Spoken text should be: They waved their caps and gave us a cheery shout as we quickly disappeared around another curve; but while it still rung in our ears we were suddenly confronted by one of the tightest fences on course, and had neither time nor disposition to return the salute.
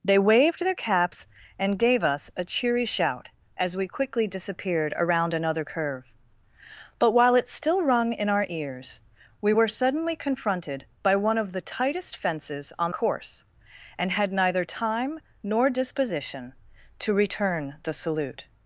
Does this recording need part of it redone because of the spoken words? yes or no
no